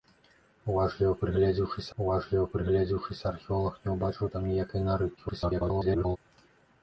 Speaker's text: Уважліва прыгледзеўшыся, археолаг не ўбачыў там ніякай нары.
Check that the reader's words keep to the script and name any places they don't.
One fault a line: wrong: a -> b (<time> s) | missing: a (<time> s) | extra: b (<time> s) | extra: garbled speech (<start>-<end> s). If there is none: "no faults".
extra: уважліва прыгледзеўшыся (2.0 s)
extra: garbled speech (5.2-6.2 s)